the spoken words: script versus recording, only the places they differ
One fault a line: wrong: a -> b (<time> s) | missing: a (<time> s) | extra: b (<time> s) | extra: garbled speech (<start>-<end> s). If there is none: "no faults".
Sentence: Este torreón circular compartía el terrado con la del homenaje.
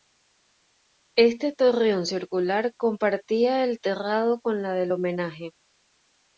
no faults